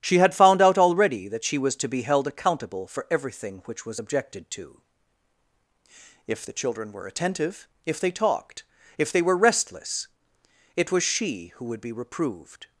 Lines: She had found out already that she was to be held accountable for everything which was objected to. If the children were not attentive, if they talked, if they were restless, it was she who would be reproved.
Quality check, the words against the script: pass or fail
fail